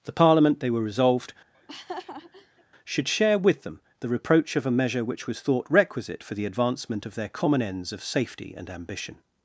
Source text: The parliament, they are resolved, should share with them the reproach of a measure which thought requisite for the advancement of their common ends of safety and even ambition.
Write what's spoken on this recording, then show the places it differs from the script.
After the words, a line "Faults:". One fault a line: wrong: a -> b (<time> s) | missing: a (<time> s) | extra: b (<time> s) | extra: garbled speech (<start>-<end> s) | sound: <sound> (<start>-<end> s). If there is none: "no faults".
The parliament, they were resolved, should share with them the reproach of a measure which was thought requisite for the advancement of their common ends of safety and ambition.
Faults:
wrong: are -> were (0.7 s)
sound: laugh (1.5-2.6 s)
extra: was (5.3 s)
missing: even (8.7 s)